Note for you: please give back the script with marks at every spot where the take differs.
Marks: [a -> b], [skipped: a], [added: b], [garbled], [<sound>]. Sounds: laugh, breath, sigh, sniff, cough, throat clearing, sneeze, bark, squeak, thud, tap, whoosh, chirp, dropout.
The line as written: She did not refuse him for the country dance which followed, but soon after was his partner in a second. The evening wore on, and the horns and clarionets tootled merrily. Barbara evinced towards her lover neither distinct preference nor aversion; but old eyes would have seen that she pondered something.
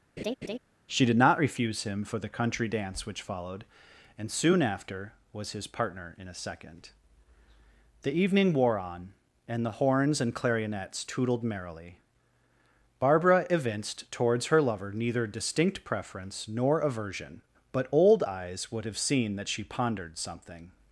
[laugh] She did not refuse him for the country dance which followed, [but -> and] soon after was his partner in a second. The evening wore on, and the horns and clarionets tootled merrily. Barbara evinced towards her lover neither distinct preference nor aversion; but old eyes would have seen that she pondered something.